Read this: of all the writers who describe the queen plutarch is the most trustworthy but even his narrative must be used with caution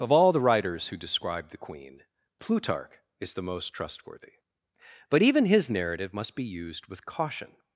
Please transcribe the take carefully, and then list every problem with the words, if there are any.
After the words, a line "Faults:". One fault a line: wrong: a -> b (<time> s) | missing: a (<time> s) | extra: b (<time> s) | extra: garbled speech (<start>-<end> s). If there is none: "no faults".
of all the writers who describe the queen plutarch is the most trustworthy but even his narrative must be used with caution
Faults:
no faults